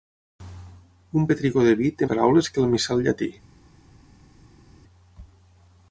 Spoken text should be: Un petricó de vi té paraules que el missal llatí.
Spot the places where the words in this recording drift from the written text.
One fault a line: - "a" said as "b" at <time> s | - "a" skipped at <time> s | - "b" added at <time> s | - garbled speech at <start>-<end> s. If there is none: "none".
none